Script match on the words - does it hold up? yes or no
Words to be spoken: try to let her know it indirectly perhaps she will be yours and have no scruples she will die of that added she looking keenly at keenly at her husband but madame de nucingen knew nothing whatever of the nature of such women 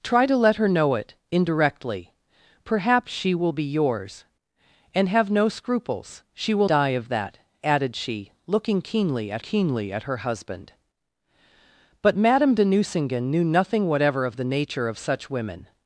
yes